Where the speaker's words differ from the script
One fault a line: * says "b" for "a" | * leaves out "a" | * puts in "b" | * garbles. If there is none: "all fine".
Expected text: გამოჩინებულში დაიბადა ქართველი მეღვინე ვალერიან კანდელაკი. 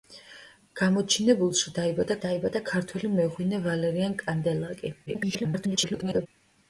* puts in "დაიბადა"
* garbles